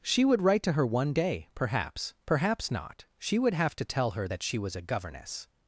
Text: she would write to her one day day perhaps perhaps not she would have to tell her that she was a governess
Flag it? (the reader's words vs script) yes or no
yes